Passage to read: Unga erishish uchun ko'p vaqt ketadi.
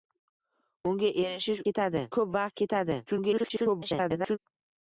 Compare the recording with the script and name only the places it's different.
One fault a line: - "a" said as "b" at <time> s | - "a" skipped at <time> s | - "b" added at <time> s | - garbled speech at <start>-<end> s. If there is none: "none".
- "uchun" said as "ketadi" at 1.7 s
- garbled speech at 3.1-4.4 s